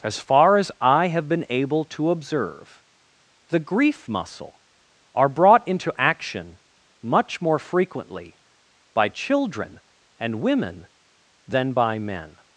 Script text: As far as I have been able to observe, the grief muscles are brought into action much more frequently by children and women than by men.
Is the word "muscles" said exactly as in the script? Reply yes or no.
no